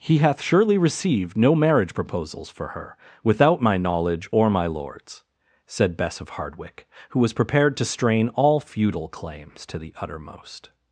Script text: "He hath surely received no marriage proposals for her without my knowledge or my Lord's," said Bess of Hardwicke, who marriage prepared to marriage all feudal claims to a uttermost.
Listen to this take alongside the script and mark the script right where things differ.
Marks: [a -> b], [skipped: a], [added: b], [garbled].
"He hath surely received no marriage proposals for her without my knowledge or my Lord's," said Bess of Hardwicke, who [marriage -> was] prepared to [marriage -> strain] all feudal claims to [a -> the] uttermost.